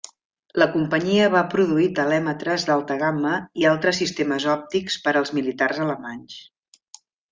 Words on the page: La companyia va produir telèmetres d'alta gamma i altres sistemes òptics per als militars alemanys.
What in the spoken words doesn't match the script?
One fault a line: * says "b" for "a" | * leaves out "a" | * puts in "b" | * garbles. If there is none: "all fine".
all fine